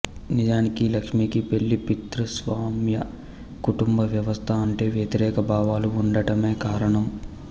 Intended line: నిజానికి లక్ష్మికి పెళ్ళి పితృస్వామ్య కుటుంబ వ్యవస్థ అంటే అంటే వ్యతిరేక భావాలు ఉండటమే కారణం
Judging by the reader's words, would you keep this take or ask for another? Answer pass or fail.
fail